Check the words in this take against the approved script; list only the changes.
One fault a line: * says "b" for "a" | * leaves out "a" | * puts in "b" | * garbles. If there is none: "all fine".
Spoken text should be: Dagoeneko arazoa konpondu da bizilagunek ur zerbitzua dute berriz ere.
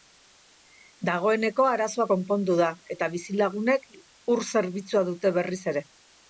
* puts in "eta"